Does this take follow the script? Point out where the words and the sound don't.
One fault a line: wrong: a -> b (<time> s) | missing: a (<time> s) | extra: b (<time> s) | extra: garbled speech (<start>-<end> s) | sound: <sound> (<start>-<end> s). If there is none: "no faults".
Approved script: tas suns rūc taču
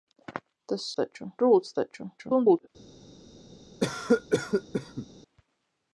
wrong: suns -> taču (1.0 s)
extra: garbled speech (2.2-2.7 s)
sound: cough (3.8-5.1 s)